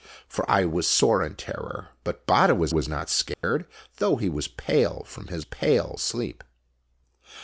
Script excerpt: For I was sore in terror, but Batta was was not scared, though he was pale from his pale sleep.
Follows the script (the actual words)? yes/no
yes